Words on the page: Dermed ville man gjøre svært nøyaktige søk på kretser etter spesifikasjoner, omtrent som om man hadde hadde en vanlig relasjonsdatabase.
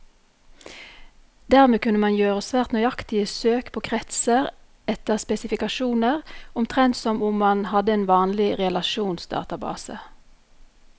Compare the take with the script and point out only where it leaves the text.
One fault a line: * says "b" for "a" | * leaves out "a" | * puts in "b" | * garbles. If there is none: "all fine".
* says "kunne" for "ville"
* leaves out "hadde"